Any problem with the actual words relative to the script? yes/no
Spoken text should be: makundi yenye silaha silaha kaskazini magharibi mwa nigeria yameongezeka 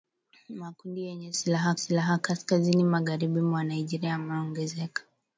no